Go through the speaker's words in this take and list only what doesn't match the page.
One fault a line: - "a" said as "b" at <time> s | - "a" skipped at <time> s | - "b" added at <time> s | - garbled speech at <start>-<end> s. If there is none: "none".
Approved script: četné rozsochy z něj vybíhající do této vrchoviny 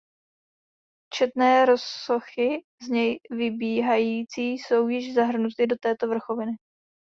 - "jsou již zahrnuty" added at 4.5 s